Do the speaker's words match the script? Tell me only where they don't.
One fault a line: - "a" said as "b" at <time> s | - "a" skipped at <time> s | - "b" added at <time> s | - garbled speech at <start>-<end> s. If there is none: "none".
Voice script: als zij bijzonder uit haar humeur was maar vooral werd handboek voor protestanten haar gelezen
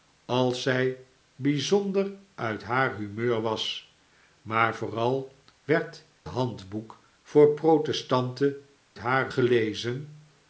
none